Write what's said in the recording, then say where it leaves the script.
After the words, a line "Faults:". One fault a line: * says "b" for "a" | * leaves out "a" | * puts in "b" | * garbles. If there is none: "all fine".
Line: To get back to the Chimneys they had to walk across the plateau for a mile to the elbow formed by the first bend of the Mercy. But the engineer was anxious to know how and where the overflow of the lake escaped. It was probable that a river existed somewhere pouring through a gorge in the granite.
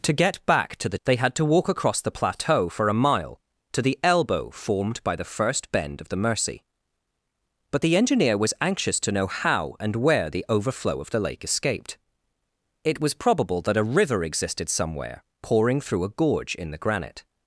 To get back to the They had to walk across the plateau for a mile to the elbow formed by the first bend of the Mercy. But the engineer was anxious to know how and where the overflow of the lake escaped. It was probable that a river existed somewhere pouring through a gorge in the granite.
Faults:
* leaves out "Chimneys"